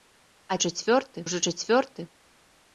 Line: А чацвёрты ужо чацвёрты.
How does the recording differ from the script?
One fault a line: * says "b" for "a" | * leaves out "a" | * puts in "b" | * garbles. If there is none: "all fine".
all fine